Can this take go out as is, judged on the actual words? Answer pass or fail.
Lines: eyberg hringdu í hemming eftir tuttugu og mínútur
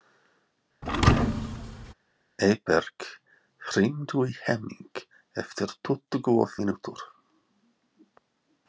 pass